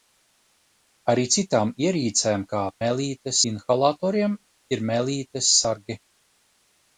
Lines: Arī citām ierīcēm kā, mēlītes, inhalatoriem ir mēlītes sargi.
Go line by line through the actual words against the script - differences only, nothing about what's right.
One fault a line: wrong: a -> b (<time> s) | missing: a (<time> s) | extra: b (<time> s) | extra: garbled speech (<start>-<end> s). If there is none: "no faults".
no faults